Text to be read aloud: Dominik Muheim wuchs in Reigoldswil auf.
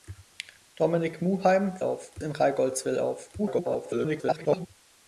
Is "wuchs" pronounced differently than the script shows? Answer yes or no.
yes